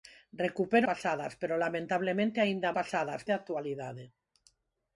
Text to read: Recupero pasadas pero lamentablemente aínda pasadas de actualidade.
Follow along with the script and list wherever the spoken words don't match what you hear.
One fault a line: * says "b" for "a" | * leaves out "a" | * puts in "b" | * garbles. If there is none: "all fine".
all fine